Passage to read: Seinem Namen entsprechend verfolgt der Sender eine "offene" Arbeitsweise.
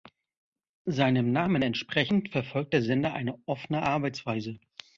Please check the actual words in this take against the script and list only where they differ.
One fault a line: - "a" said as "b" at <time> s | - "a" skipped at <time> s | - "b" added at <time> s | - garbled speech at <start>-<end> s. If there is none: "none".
none